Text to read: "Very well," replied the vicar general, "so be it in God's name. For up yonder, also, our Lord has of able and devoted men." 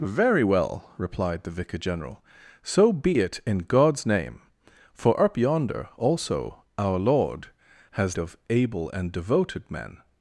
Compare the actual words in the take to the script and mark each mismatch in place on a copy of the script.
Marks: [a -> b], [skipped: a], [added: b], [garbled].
"Very well," replied the vicar general, "so be it in God's name. For up yonder, also, our Lord has of able and devoted men."